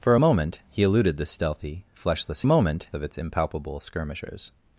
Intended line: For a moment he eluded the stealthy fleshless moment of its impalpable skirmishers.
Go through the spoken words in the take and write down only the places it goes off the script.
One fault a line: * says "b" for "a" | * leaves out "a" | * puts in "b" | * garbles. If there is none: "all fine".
all fine